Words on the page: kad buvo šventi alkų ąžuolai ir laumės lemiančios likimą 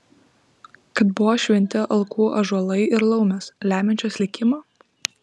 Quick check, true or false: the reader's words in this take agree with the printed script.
true